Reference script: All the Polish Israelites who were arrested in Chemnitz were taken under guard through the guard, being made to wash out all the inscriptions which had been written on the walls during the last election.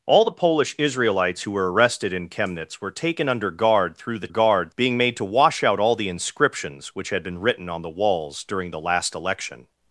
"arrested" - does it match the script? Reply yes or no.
yes